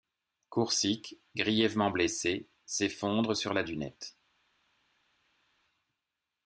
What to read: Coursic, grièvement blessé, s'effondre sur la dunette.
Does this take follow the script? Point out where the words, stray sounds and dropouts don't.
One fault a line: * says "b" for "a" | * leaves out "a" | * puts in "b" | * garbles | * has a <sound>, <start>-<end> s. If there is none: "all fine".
all fine